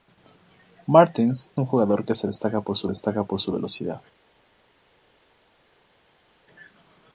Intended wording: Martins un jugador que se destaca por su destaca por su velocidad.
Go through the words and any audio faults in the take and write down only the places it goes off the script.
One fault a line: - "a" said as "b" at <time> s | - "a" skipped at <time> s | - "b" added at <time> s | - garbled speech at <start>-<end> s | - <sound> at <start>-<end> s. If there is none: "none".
none